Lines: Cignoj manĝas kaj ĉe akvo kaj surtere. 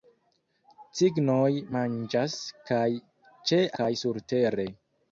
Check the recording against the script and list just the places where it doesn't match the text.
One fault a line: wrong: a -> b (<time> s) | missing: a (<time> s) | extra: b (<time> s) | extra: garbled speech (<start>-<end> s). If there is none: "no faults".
missing: akvo (3.6 s)